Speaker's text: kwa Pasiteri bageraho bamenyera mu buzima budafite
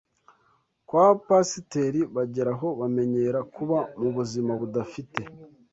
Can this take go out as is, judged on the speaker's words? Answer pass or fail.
fail